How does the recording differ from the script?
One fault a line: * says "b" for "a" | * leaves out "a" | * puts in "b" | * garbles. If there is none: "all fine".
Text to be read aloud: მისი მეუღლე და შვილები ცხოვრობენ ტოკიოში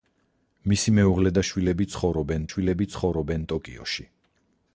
* puts in "შვილები ცხოვრობენ"